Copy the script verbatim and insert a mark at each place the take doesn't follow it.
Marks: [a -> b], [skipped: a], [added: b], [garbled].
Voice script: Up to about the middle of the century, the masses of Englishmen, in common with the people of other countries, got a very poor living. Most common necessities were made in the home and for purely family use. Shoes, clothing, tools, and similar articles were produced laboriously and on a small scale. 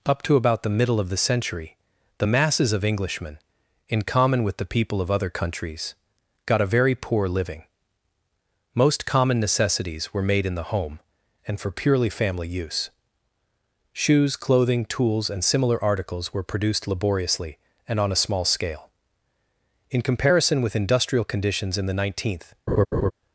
Up to about the middle of the century, the masses of Englishmen, in common with the people of other countries, got a very poor living. Most common necessities were made in the home and for purely family use. Shoes, clothing, tools, and similar articles were produced laboriously and on a small scale. [added: In comparison with industrial conditions in the nineteenth]